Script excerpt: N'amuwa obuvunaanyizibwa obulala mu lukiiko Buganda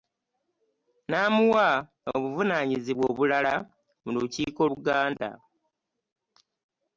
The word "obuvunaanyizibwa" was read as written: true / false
true